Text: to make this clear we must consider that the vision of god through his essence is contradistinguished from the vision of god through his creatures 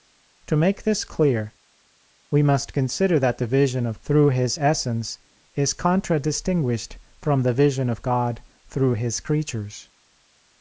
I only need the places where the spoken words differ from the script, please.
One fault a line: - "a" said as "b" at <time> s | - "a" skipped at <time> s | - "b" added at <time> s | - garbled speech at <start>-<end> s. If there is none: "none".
- "god" skipped at 4.0 s